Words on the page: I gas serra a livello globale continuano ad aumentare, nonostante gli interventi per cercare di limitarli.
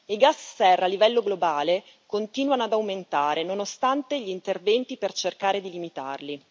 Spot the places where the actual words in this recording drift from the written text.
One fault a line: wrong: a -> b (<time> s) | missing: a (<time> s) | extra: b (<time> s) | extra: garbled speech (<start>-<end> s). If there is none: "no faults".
no faults